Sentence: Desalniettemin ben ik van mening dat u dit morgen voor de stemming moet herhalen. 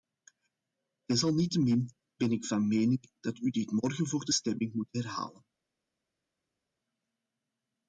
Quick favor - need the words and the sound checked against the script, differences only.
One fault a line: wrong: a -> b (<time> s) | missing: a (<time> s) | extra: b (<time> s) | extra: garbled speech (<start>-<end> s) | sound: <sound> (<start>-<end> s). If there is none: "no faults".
no faults